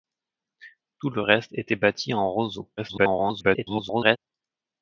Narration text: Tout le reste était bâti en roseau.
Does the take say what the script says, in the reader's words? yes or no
no